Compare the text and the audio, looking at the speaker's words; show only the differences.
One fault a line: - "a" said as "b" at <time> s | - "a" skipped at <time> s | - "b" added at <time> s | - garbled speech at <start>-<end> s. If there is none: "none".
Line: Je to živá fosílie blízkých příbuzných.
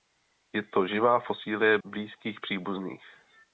none